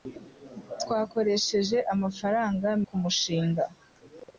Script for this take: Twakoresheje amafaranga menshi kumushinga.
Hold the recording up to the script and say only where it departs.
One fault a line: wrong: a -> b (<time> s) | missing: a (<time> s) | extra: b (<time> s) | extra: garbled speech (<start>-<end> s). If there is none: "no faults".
missing: menshi (2.7 s)